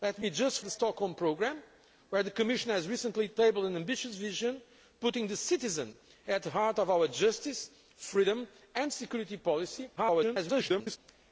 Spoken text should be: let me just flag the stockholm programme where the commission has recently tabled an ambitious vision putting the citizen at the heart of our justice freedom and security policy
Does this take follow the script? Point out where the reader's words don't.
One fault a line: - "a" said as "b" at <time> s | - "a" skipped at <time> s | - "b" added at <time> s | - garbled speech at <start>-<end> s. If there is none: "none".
- "flag" skipped at 0.6 s
- garbled speech at 10.0-11.0 s